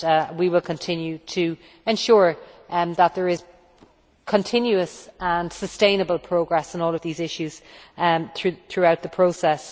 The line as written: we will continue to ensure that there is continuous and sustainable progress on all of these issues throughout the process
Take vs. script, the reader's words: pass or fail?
pass